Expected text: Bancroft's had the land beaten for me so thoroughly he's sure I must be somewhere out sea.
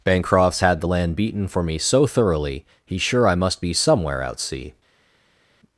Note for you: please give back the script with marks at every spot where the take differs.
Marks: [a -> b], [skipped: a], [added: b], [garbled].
Bancroft's had the land beaten for me so thoroughly he's sure I must be somewhere out sea.